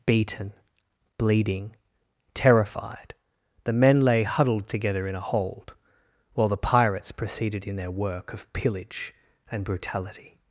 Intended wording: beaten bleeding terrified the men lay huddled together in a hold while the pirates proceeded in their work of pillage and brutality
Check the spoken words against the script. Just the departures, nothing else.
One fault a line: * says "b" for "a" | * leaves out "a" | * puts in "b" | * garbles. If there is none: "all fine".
all fine